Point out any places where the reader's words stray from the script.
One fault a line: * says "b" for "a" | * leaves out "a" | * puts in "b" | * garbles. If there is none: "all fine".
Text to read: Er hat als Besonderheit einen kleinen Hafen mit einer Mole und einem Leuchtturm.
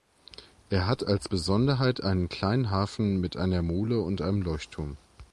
all fine